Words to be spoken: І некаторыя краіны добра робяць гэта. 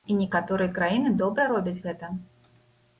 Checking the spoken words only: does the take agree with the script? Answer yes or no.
yes